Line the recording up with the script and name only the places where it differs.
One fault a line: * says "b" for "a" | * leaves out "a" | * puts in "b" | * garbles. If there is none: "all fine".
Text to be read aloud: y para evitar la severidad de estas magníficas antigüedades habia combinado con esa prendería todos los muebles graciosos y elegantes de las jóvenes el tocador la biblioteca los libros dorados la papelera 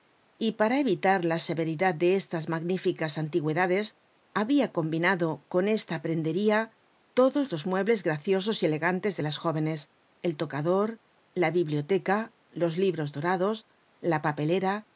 * says "esta" for "esa"